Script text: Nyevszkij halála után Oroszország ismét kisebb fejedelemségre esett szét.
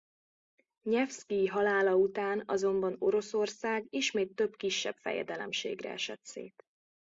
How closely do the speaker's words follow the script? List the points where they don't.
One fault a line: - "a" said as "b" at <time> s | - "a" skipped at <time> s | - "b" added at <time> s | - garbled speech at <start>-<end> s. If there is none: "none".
- "azonban" added at 2.5 s
- "több" added at 4.3 s